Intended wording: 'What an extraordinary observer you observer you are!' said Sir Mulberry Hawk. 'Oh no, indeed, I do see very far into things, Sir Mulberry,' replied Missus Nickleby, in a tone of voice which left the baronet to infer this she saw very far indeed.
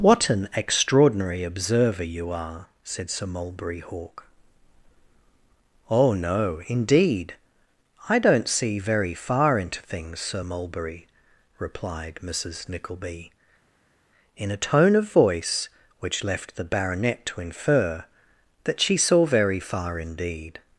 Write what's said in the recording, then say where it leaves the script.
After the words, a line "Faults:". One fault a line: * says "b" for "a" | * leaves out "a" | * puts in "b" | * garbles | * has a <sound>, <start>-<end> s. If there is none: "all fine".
'What an extraordinary observer you are!' said Sir Mulberry Hawk. 'Oh no, indeed, I don't see very far into things, Sir Mulberry,' replied Missus Nickleby, in a tone of voice which left the baronet to infer that she saw very far indeed.
Faults:
* leaves out "observer you"
* says "don't" for "do"
* says "that" for "this"